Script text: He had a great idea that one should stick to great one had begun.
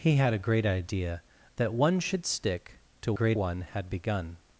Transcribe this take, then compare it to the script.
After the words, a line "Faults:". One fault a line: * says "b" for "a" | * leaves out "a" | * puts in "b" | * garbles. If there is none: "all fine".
He had a great idea that one should stick to great one had begun.
Faults:
all fine